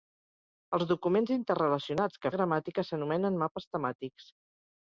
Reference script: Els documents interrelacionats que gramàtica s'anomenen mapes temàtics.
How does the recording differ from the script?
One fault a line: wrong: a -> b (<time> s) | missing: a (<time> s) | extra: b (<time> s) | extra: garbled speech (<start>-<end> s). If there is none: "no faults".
no faults